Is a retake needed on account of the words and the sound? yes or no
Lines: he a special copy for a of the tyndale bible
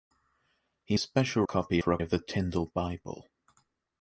no